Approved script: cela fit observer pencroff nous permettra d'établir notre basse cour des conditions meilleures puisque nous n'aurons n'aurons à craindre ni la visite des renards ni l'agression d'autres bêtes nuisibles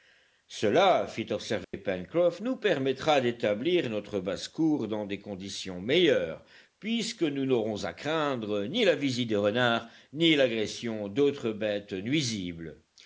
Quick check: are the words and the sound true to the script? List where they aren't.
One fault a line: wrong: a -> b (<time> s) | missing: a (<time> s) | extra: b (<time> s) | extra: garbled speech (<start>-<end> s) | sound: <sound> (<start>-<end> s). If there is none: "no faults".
sound: dropout (1.6-1.7 s)
extra: dans (4.9 s)
missing: n'aurons (7.8 s)